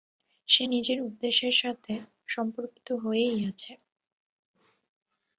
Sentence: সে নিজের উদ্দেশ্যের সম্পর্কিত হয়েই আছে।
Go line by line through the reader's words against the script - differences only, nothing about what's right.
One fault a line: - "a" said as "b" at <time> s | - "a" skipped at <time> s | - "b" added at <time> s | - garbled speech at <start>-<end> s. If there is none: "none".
- "সাথে" added at 1.6 s